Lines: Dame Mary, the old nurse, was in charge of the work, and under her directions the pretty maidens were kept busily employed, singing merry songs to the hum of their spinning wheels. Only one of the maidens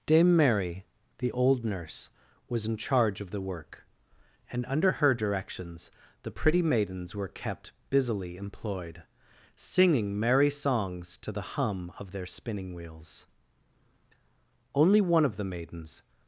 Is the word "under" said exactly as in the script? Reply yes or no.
yes